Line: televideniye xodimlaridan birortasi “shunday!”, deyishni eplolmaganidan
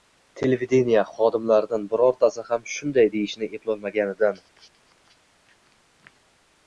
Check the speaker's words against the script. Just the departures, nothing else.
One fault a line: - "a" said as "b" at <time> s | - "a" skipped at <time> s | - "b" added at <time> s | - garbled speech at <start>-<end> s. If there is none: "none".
- "ham" added at 2.5 s